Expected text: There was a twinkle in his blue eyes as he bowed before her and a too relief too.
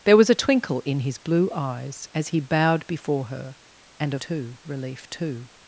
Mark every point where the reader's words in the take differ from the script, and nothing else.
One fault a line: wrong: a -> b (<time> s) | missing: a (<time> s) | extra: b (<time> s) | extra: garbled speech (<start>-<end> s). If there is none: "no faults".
no faults